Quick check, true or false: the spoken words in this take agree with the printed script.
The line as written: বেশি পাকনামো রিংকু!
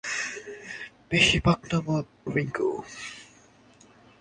true